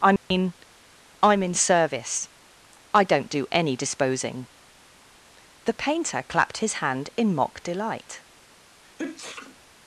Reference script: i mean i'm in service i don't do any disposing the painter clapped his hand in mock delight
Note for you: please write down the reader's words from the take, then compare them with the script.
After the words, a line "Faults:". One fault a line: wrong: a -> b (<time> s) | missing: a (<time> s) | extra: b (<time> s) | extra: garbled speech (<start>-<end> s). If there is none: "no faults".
i mean i'm in service i don't do any disposing the painter clapped his hand in mock delight
Faults:
no faults